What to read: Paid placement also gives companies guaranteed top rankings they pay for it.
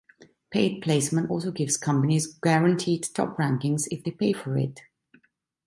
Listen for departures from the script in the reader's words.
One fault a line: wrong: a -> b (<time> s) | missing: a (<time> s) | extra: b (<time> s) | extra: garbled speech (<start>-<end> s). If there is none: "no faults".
extra: if (3.9 s)